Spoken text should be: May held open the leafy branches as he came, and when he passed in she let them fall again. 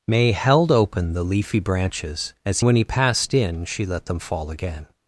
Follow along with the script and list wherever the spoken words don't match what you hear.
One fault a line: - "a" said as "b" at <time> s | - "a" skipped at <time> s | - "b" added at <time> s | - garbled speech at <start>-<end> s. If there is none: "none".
- "he came and" skipped at 2.6 s